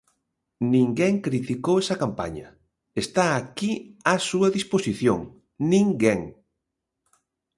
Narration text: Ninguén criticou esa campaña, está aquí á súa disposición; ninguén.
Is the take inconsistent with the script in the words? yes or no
no